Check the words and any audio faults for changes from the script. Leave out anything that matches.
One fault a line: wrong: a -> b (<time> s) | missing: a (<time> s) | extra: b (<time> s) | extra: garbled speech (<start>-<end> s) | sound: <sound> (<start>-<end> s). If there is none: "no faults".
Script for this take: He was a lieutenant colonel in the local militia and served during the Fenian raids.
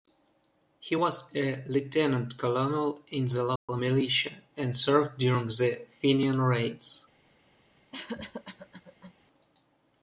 sound: dropout (3.6-3.7 s)
sound: cough (7.9-9.1 s)